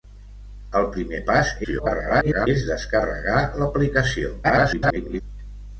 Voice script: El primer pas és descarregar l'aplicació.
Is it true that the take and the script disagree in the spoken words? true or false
true